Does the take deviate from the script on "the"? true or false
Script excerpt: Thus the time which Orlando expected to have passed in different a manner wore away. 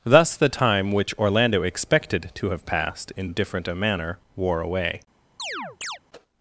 false